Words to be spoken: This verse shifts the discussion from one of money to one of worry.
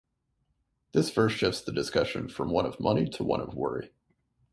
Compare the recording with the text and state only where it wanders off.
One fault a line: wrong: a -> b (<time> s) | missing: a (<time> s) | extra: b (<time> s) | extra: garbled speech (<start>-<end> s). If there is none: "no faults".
no faults